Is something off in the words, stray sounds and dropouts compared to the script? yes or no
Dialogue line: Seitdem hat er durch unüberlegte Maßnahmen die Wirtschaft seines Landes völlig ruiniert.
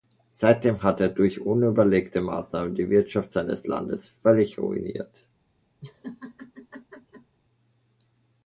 yes